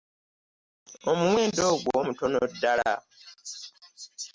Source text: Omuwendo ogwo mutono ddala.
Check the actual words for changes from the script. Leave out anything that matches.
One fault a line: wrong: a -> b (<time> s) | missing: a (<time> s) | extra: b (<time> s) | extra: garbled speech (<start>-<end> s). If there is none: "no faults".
no faults